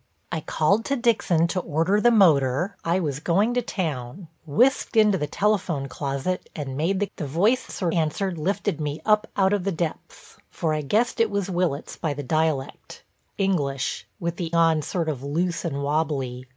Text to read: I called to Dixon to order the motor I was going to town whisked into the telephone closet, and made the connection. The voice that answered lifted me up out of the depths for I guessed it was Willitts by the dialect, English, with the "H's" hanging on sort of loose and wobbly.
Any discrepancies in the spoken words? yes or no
yes